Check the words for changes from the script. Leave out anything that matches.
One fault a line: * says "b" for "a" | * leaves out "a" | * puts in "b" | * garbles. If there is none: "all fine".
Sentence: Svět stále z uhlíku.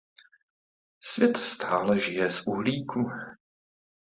* puts in "žije"